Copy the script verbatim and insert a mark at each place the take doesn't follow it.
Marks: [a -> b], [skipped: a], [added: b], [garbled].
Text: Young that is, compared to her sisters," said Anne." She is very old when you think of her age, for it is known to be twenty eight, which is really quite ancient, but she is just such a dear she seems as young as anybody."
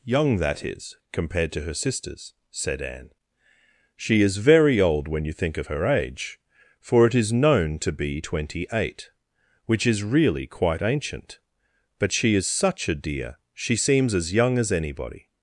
Young that is, compared to her sisters," said Anne." She is very old when you think of her age, for it is known to be twenty eight, which is really quite ancient, but she is [skipped: just] such a dear she seems as young as anybody."